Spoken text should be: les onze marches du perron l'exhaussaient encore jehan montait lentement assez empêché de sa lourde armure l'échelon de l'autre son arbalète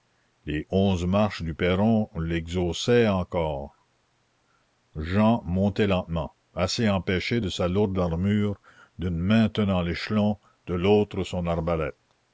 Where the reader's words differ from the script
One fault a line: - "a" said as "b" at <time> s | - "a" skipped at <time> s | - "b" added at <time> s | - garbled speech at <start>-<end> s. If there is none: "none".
- "d'une main tenant" added at 9.0 s